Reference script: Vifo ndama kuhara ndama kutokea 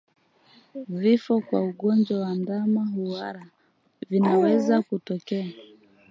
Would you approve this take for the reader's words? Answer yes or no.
no